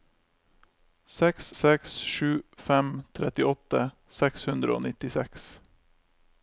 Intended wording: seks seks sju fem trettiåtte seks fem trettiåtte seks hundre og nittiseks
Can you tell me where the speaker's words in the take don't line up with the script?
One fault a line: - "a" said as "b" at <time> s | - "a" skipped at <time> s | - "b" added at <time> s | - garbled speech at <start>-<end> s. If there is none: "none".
- "fem trettiåtte seks" skipped at 4.5 s